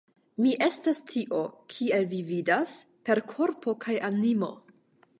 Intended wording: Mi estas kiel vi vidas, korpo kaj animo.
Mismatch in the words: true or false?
true